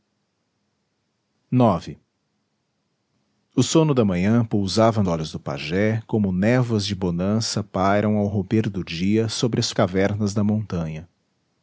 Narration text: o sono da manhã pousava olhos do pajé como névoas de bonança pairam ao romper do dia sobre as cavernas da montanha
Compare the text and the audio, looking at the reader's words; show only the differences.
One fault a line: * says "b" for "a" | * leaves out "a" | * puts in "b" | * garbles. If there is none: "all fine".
all fine